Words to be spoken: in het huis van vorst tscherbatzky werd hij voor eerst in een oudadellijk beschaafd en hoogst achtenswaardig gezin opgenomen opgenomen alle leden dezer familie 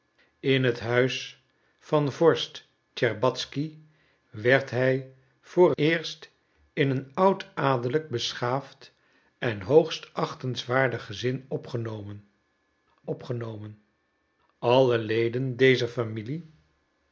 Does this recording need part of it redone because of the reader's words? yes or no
no